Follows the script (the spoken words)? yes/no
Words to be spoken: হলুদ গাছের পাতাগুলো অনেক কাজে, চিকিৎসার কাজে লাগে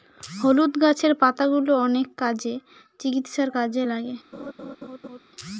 yes